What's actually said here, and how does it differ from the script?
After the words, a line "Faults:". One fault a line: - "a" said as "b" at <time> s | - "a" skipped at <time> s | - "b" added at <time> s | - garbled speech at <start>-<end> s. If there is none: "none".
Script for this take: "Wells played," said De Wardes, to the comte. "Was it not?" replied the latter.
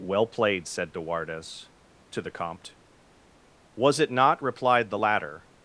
"Well played," said De Wardes, to the comte. "Was it not?" replied the latter.
Faults:
- "Wells" said as "Well" at 0.0 s